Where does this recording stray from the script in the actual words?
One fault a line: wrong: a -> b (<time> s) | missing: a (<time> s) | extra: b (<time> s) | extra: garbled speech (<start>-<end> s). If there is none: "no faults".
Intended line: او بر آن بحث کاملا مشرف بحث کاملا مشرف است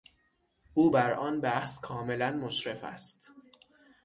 missing: بحث کاملا مشرف (2.8 s)